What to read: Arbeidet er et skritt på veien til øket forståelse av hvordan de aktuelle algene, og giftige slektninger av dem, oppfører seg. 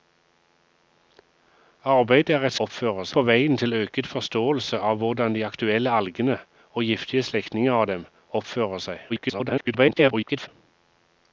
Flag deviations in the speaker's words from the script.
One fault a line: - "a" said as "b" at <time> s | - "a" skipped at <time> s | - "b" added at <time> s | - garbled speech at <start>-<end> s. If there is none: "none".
- "skritt" said as "oppfører" at 2.7 s
- garbled speech at 9.1-10.5 s